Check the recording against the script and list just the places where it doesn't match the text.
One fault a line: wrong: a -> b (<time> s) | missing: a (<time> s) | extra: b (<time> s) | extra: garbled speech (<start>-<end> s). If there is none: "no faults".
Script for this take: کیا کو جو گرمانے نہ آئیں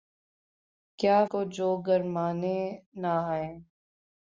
no faults